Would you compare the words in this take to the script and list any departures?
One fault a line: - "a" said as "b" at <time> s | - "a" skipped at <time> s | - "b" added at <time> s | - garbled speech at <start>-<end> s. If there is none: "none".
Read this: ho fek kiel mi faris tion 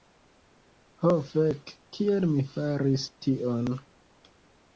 none